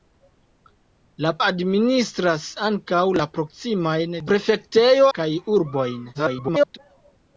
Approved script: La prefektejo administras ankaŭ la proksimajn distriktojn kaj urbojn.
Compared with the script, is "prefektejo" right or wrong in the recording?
wrong